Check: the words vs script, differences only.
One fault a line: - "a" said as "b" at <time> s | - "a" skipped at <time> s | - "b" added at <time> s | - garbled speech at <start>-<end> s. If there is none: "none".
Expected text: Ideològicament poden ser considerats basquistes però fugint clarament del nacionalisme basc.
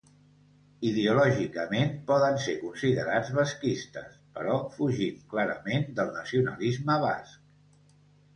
none